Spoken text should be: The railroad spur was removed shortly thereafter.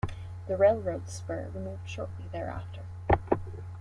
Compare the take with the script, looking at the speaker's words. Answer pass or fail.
fail